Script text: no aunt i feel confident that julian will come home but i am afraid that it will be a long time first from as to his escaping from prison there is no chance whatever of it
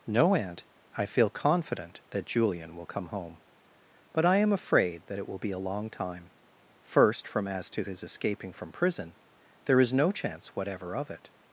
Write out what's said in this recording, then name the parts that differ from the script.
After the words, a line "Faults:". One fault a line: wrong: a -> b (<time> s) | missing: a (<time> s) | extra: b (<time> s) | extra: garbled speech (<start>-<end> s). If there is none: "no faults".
no aunt i feel confident that julian will come home but i am afraid that it will be a long time first from as to his escaping from prison there is no chance whatever of it
Faults:
no faults